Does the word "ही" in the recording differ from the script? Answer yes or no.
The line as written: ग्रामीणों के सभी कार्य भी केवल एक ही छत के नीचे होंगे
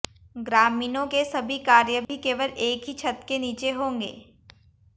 no